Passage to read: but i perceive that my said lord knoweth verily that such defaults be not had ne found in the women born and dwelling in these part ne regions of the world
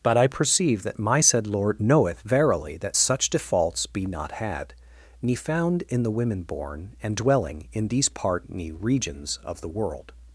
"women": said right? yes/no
yes